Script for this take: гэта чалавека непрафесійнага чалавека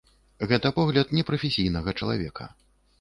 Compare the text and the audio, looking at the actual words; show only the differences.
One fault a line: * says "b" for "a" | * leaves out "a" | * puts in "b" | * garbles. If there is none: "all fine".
* says "погляд" for "чалавека"